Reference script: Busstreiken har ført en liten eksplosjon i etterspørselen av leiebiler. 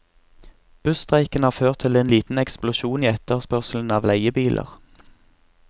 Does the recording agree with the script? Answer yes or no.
no